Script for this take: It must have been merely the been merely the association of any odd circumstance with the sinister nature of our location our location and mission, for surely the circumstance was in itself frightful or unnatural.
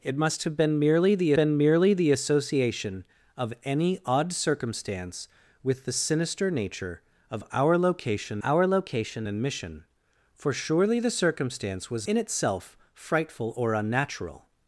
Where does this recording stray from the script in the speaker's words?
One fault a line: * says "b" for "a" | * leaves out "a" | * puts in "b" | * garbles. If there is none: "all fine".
all fine